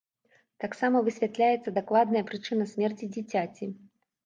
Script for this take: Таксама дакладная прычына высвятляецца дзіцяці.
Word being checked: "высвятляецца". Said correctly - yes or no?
no